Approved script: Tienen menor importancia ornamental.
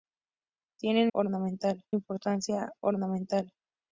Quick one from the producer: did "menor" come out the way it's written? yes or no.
no